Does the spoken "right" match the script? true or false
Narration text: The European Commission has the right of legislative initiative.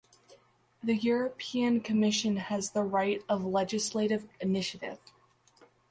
true